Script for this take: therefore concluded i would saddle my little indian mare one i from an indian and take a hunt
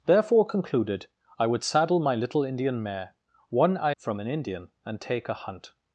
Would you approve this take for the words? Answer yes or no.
yes